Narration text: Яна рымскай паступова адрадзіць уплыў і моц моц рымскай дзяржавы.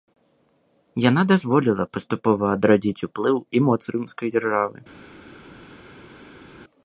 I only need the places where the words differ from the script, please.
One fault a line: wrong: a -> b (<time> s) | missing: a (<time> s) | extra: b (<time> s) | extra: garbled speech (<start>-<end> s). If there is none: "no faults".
wrong: рымскай -> дазволіла (1.3 s)
missing: моц (3.8 s)